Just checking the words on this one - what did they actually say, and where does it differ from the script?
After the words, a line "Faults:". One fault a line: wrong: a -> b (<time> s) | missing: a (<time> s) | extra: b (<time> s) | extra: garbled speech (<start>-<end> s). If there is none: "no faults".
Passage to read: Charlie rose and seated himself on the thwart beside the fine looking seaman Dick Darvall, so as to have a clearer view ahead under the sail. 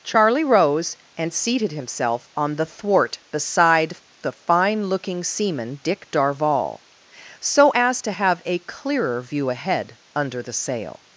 Charlie rose and seated himself on the thwart beside the fine looking seaman Dick Darvall, so as to have a clearer view ahead under the sail.
Faults:
no faults